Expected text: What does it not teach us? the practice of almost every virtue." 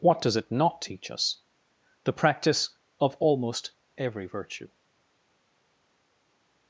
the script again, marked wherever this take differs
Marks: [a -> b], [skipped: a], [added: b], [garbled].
What does it not teach us? the practice of almost every virtue."